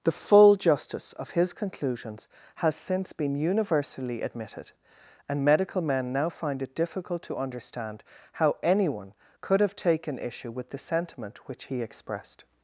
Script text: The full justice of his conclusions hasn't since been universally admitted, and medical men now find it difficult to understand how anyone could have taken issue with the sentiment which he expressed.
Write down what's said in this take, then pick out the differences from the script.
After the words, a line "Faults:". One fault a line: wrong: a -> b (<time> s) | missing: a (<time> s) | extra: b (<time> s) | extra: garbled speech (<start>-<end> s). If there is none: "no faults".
The full justice of his conclusions has since been universally admitted, and medical men now find it difficult to understand how anyone could have taken issue with the sentiment which he expressed.
Faults:
wrong: hasn't -> has (2.6 s)